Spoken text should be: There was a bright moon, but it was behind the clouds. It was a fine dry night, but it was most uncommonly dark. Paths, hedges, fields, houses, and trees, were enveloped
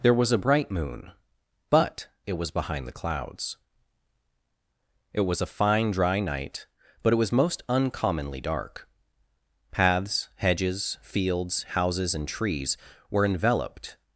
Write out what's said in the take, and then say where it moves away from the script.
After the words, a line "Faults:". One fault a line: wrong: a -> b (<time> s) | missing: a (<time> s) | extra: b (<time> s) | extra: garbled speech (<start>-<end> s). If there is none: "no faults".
There was a bright moon, but it was behind the clouds. It was a fine dry night, but it was most uncommonly dark. Paths, hedges, fields, houses, and trees, were enveloped
Faults:
no faults